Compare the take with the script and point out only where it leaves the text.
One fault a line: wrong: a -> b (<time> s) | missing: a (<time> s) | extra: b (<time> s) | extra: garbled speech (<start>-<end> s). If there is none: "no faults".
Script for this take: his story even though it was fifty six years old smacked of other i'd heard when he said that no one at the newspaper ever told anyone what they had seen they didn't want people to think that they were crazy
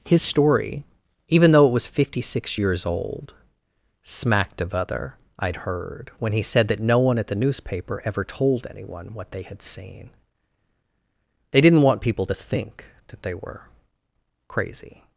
no faults